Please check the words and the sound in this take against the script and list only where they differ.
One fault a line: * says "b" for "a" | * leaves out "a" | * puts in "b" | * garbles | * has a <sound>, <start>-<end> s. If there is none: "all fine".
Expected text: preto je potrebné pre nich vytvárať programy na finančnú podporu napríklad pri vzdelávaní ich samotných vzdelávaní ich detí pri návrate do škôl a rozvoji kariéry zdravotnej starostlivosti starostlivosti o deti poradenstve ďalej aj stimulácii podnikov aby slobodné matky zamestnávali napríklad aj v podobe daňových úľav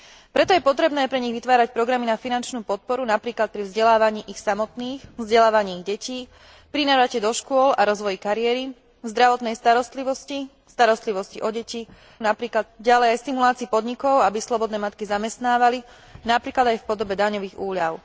* says "napríklad" for "poradenstve"